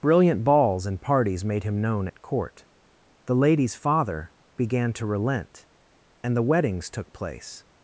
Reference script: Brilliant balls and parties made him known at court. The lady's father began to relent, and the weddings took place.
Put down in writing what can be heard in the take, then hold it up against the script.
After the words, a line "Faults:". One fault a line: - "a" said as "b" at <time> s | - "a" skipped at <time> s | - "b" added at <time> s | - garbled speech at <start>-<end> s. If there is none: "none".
Brilliant balls and parties made him known at court. The lady's father began to relent, and the weddings took place.
Faults:
none